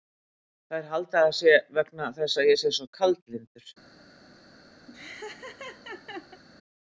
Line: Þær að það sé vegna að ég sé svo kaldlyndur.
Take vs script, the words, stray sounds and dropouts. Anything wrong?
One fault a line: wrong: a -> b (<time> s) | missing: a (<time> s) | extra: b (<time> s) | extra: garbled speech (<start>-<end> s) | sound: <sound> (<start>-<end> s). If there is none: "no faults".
extra: halda (0.9 s)
extra: þess (2.2 s)
sound: laugh (4.9-6.4 s)